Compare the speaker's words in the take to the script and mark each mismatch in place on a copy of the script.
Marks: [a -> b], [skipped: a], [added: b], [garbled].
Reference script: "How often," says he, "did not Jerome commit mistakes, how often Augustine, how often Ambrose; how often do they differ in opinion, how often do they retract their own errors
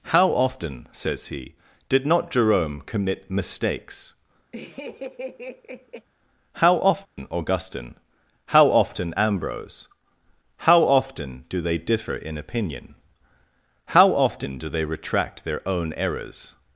"How often," says he, "did not Jerome commit mistakes, how often Augustine, how often Ambrose; how often do they differ in opinion, how often do they retract their own errors